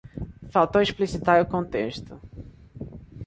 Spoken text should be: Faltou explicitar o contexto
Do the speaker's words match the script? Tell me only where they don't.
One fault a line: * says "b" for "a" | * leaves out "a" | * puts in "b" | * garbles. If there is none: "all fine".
all fine